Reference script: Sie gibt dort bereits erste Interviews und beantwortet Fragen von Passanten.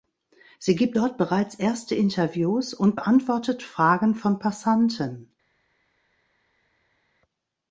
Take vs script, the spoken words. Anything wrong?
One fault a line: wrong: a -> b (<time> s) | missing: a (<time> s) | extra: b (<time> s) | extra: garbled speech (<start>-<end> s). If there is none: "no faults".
no faults